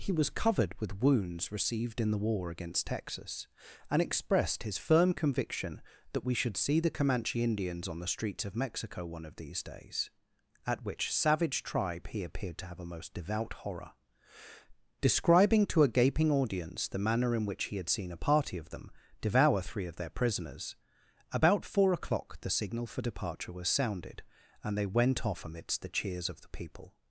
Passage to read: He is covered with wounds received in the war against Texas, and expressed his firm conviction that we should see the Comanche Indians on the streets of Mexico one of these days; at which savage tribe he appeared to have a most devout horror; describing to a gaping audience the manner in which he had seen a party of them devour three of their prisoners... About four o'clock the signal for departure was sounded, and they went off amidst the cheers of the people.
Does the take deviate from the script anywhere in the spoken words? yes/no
yes